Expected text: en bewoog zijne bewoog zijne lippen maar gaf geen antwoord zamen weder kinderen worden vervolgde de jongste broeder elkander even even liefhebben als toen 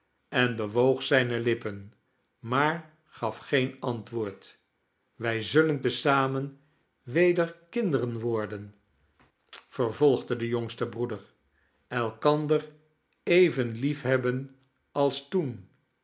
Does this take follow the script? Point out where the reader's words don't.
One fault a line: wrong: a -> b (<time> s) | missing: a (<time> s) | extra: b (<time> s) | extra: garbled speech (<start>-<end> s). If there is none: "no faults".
missing: bewoog zijne (1.4 s)
extra: wij zullen te (5.2 s)
missing: even (13.7 s)